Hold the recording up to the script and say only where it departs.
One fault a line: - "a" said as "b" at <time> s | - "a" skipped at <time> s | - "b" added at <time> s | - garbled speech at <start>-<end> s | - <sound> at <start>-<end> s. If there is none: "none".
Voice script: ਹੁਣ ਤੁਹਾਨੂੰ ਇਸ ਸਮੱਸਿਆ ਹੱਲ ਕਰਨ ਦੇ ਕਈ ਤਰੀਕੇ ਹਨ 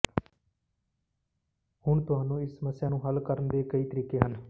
- "ਨੂੰ" added at 2.9 s